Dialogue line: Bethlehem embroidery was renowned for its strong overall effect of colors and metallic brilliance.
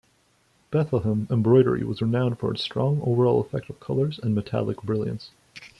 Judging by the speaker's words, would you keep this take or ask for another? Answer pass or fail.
pass